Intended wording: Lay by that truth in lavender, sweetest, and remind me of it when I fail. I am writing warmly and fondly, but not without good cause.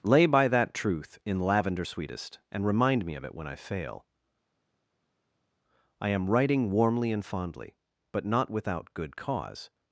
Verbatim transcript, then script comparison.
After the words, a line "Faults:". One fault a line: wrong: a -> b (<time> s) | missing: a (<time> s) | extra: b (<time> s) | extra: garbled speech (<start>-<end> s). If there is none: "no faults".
Lay by that truth in lavender, sweetest, and remind me of it when I fail. I am writing warmly and fondly, but not without good cause.
Faults:
no faults